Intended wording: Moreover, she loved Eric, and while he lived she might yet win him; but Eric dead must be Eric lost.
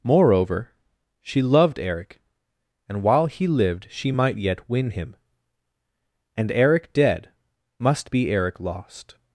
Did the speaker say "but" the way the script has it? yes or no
no